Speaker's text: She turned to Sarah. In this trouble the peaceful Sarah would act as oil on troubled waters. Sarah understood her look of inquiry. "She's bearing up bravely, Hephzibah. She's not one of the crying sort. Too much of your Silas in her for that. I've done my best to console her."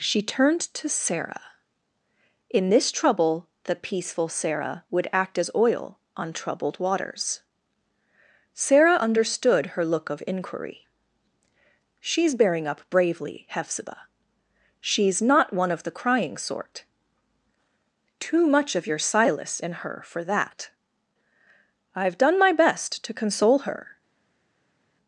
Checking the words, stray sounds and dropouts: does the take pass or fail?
pass